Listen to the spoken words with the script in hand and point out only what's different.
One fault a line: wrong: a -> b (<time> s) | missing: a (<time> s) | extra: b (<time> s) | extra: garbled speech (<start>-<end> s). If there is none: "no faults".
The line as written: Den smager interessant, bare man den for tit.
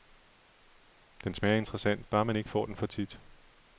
extra: ikke får (2.4 s)